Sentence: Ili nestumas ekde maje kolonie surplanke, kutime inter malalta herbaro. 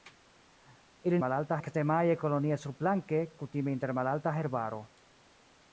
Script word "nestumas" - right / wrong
wrong